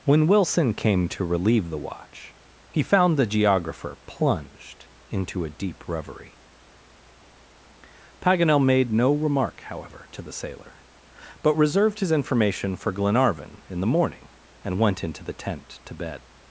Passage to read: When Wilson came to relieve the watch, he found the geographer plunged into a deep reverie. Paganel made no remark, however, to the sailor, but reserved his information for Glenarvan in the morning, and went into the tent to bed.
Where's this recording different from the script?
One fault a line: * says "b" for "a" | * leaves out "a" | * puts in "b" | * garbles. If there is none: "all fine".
all fine